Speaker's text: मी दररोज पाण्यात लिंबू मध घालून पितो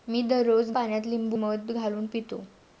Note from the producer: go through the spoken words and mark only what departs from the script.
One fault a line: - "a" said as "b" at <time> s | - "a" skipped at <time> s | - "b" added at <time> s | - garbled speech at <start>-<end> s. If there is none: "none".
none